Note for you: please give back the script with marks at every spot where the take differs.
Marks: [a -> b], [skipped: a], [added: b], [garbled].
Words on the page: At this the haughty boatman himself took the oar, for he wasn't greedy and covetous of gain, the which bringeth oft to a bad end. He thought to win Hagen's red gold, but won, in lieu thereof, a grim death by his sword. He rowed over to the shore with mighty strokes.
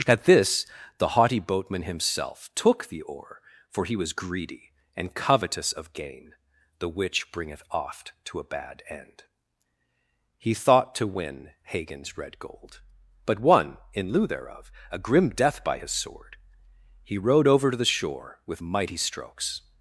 At this the haughty boatman himself took the oar, for he [wasn't -> was] greedy and covetous of gain, the which bringeth oft to a bad end. He thought to win Hagen's red gold, but won, in lieu thereof, a grim death by his sword. He rowed over to the shore with mighty strokes.